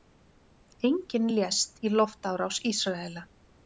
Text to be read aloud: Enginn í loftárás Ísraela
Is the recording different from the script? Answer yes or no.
yes